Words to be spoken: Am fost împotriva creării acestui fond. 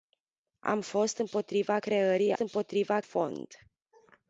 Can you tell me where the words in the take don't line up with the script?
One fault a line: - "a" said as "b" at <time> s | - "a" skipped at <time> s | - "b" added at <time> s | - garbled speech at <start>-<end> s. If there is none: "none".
- "acestui" said as "împotriva" at 2.4 s